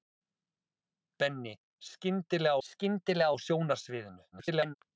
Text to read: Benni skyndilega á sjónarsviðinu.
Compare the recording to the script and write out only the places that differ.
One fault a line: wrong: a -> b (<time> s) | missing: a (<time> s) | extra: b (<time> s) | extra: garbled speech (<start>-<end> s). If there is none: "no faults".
extra: skyndilega (2.7 s)
extra: garbled speech (4.3-4.7 s)